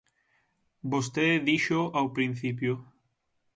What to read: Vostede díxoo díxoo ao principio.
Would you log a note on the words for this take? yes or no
yes